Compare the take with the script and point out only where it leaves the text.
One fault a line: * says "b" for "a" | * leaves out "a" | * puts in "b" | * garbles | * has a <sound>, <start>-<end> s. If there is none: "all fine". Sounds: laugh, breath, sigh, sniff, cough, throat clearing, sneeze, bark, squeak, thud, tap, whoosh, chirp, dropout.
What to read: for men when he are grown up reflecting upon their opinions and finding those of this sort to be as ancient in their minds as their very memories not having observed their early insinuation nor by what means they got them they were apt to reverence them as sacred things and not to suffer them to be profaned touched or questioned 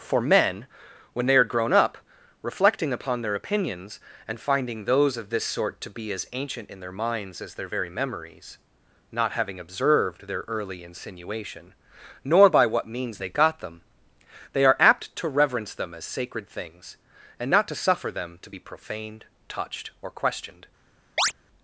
* says "they" for "he"
* says "are" for "were"
* has a chirp, 21.2-21.3 s